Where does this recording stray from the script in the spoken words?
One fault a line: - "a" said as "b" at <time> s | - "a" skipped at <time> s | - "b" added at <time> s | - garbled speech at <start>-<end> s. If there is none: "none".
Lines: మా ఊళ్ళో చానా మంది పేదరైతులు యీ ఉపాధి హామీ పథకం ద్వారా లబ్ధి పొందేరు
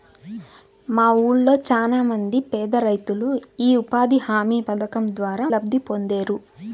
none